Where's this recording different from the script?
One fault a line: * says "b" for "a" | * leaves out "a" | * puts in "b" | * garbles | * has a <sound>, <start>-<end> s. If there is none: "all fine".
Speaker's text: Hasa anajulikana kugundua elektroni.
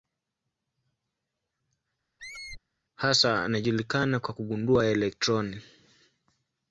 * has a squeak, 2.2-2.6 s
* puts in "kwa"